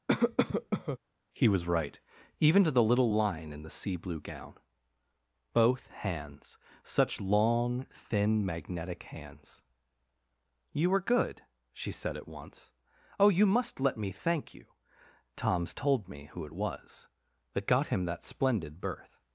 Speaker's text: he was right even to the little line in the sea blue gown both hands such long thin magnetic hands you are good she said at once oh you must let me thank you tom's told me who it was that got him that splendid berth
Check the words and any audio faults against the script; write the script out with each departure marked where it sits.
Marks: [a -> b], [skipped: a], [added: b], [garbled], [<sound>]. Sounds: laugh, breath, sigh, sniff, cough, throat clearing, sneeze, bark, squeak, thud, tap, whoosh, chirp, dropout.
[cough] he was right even to the little line in the sea blue gown both hands such long thin magnetic hands you [are -> were] good she said at once oh you must let me thank you tom's told me who it was that got him that splendid berth